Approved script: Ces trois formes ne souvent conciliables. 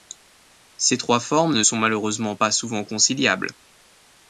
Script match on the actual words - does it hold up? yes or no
no